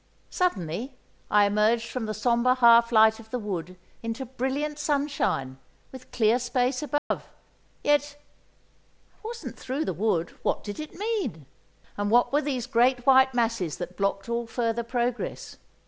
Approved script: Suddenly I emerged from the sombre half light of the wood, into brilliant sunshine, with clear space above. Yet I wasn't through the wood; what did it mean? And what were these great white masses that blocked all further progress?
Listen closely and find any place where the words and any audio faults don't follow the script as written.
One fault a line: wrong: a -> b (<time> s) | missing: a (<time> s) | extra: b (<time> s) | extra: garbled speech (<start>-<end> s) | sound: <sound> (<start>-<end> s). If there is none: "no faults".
sound: dropout (7.0-7.1 s)